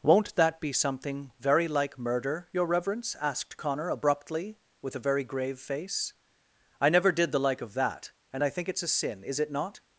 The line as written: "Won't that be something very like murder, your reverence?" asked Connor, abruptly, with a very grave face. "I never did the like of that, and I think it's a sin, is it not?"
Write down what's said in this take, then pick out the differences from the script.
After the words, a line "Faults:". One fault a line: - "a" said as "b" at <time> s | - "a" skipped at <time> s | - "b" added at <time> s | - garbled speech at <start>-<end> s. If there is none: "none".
"Won't that be something very like murder, your reverence?" asked Connor, abruptly, with a very grave face. "I never did the like of that, and I think it's a sin, is it not?"
Faults:
none